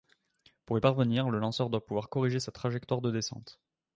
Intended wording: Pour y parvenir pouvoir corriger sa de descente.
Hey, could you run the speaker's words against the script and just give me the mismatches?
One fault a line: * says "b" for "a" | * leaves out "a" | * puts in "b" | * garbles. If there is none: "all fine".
* puts in "le lanceur doit"
* puts in "trajectoire"